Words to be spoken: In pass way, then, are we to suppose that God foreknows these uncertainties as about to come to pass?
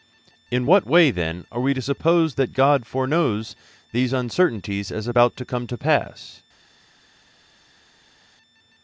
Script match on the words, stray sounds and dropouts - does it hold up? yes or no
no